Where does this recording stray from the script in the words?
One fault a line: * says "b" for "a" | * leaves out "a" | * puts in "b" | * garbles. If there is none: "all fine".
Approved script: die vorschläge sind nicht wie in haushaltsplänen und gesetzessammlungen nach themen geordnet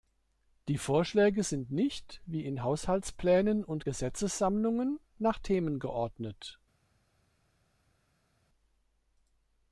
all fine